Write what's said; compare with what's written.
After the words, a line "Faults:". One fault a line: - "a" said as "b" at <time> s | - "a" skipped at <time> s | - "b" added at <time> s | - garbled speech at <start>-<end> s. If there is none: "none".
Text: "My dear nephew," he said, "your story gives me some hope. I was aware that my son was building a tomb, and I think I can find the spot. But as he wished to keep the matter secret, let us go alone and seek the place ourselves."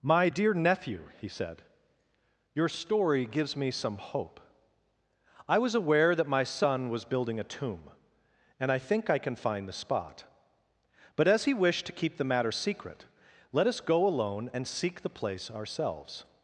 "My dear nephew," he said, "your story gives me some hope. I was aware that my son was building a tomb, and I think I can find the spot. But as he wished to keep the matter secret, let us go alone and seek the place ourselves."
Faults:
none